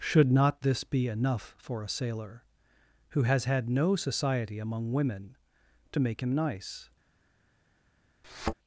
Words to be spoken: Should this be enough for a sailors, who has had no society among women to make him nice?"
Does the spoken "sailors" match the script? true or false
false